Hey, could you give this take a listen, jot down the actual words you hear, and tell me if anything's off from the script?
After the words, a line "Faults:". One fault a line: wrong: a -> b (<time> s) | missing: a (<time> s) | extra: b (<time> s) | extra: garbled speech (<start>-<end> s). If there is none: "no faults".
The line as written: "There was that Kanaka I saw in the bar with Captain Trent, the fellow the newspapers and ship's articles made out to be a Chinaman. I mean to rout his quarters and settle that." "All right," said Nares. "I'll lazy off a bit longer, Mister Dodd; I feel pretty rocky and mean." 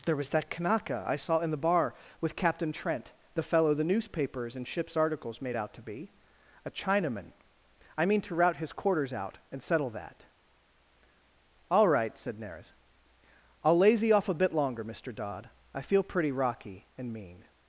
"There was that Kanaka I saw in the bar with Captain Trent, the fellow the newspapers and ship's articles made out to be a Chinaman. I mean to rout his quarters out and settle that." "All right," said Nares. "I'll lazy off a bit longer, Mister Dodd; I feel pretty rocky and mean."
Faults:
extra: out (9.1 s)